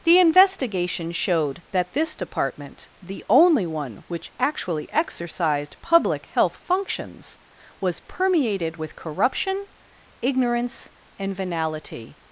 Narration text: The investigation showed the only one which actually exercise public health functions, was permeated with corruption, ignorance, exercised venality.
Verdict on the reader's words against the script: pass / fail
fail